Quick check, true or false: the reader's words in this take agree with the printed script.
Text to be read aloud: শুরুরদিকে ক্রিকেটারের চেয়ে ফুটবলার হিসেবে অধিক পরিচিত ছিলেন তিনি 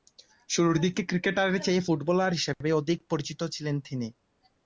true